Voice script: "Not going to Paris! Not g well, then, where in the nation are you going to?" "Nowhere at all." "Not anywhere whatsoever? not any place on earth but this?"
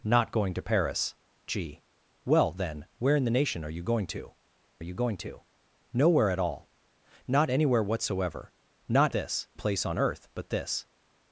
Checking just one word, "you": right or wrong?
right